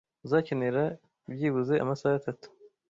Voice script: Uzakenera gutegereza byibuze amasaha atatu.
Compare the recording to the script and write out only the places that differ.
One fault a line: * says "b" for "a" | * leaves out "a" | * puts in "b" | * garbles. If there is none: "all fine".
* leaves out "gutegereza"